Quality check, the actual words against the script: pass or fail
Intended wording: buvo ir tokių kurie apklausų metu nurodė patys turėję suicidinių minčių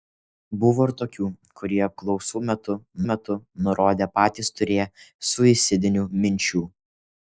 fail